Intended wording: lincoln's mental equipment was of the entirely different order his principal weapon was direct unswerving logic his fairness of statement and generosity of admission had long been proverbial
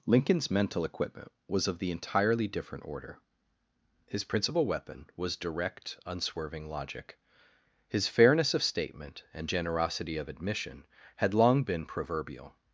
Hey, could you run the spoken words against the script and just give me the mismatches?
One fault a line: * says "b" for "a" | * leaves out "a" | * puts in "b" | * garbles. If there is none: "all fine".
all fine